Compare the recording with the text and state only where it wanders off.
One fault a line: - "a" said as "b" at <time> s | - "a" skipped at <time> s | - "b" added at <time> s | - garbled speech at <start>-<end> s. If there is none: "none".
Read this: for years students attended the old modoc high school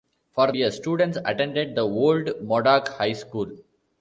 none